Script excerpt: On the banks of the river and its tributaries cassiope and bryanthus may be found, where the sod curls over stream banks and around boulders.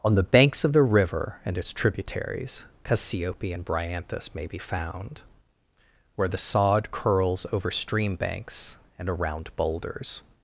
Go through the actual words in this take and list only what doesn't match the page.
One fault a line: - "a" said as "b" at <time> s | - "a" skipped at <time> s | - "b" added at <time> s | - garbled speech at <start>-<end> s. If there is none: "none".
none